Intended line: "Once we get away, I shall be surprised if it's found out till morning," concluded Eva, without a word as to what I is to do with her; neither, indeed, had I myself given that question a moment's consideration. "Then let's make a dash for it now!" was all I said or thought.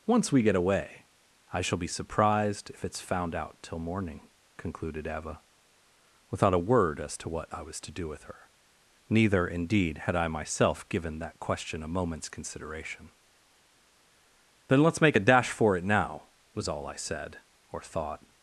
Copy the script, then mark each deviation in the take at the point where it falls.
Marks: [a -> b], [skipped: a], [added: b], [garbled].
"Once we get away, I shall be surprised if it's found out till morning," concluded Eva, without a word as to what I [is -> was] to do with her; neither, indeed, had I myself given that question a moment's consideration. "Then let's make a dash for it now!" was all I said or thought.